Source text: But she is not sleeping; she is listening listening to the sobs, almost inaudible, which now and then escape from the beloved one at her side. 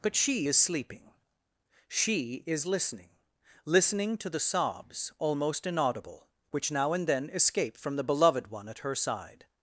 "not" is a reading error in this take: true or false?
true